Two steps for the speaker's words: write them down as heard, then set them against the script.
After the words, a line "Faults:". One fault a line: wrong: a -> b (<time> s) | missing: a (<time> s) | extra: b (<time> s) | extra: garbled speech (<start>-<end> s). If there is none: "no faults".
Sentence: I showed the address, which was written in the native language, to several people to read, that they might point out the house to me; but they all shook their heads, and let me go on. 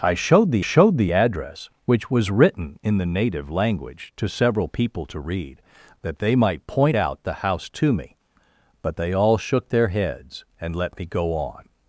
I showed the showed the address, which was written in the native language, to several people to read, that they might point out the house to me; but they all shook their heads, and let me go on.
Faults:
extra: showed the (0.6 s)